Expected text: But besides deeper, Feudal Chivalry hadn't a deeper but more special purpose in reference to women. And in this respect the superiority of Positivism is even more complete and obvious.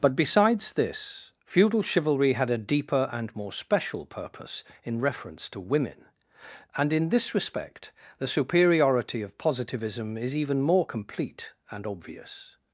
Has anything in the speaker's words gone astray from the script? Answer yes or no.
yes